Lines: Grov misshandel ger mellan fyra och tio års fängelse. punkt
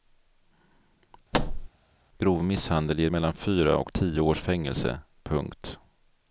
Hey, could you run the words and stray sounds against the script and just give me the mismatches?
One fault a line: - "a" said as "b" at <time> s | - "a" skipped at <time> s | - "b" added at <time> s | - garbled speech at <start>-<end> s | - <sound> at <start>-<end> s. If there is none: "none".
- thud at 1.3-1.7 s